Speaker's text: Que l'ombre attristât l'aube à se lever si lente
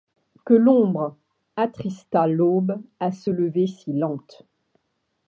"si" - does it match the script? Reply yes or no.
yes